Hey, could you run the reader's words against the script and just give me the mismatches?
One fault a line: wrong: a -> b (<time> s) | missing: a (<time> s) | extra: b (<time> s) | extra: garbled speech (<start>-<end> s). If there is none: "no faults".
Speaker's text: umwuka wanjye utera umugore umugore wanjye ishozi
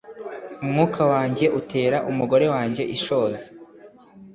missing: umugore (2.5 s)